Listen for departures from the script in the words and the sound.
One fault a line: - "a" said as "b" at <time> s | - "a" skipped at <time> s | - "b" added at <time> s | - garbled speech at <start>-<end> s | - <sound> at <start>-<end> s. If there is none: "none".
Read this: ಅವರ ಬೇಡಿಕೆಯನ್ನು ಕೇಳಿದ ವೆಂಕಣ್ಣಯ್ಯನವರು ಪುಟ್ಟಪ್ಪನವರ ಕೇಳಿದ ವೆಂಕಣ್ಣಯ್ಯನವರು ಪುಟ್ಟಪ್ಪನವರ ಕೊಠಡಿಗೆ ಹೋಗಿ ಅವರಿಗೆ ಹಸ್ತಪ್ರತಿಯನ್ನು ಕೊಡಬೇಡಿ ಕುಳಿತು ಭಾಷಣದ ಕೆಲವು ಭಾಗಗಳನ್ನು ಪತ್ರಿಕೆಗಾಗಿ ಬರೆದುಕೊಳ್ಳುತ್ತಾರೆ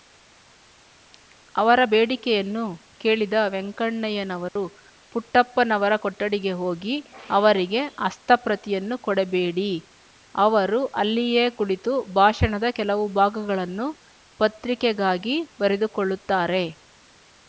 - dropout at 4.5-4.6 s
- "ಕೇಳಿದ ವೆಂಕಣ್ಣಯ್ಯನವರು ಪುಟ್ಟಪ್ಪನವರ" skipped at 5.9 s
- "ಅವರು ಅಲ್ಲಿಯೇ" added at 10.3 s